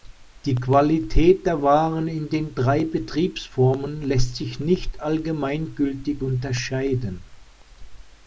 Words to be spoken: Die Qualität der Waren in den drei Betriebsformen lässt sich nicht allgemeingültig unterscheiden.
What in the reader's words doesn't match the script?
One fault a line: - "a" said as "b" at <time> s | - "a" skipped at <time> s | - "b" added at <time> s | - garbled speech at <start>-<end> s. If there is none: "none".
none